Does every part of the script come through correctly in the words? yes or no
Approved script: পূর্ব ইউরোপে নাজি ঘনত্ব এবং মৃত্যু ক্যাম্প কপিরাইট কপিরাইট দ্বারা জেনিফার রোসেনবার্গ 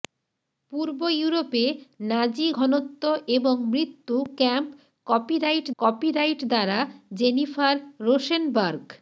yes